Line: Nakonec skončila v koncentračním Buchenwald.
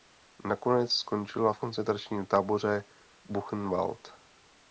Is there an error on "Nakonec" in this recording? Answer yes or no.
no